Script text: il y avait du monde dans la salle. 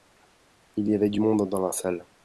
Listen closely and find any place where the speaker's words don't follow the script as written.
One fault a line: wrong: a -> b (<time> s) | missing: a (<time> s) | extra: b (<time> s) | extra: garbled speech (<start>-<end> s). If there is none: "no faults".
no faults